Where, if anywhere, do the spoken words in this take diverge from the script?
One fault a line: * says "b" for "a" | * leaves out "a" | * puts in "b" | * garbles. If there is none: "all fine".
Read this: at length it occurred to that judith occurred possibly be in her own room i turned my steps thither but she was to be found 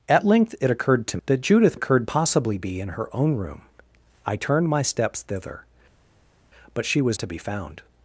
all fine